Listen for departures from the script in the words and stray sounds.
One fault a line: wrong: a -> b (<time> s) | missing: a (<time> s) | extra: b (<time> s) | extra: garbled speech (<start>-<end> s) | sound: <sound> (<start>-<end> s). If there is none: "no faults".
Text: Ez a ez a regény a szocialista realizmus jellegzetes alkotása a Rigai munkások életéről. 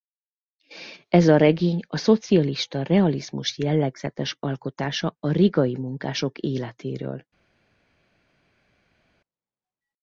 missing: ez a (1.4 s)